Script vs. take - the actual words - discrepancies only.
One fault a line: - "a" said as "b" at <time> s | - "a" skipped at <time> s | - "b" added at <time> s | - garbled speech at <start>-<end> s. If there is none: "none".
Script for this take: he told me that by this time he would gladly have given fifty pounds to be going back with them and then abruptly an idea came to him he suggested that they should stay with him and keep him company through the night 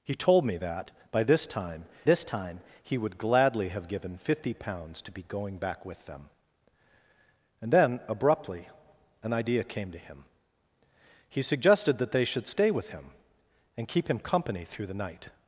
- "this time" added at 2.0 s